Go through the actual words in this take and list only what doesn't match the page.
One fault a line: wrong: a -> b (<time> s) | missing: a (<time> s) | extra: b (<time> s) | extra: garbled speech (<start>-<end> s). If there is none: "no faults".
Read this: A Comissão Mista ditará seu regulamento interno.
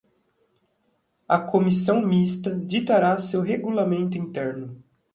no faults